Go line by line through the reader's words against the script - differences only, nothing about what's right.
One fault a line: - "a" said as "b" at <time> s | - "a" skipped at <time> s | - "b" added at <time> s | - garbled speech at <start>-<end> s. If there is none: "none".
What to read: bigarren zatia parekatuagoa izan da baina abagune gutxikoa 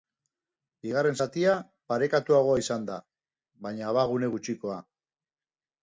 none